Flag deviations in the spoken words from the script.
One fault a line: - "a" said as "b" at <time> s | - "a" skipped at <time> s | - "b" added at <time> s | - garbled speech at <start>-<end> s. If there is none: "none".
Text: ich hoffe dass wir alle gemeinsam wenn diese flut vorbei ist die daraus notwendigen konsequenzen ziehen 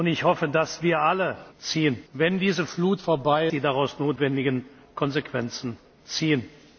- "gemeinsam" said as "ziehen" at 1.6 s
- "ist" skipped at 3.5 s